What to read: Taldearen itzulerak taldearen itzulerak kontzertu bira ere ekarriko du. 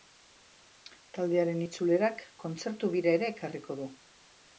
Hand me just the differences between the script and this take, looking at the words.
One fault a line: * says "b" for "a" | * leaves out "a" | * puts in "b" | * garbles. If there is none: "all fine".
* leaves out "taldearen itzulerak"